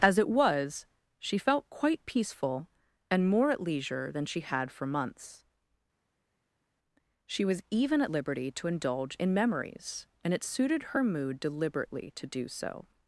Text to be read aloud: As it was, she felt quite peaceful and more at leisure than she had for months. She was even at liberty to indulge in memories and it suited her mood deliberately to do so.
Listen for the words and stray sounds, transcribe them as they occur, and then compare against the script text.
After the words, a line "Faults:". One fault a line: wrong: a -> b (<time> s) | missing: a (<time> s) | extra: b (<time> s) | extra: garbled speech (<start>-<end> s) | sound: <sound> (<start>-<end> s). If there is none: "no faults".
As it was, she felt quite peaceful and more at leisure than she had for months. She was even at liberty to indulge in memories and it suited her mood deliberately to do so.
Faults:
no faults